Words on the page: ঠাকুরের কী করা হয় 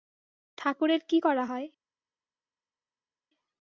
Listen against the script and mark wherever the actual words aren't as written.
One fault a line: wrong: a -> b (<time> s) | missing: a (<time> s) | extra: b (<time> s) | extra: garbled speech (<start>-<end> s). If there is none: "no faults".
no faults